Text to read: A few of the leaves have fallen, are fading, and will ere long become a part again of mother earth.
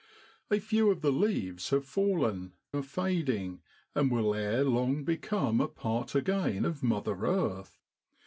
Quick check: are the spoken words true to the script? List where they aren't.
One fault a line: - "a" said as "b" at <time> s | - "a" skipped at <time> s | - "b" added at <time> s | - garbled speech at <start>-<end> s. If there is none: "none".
none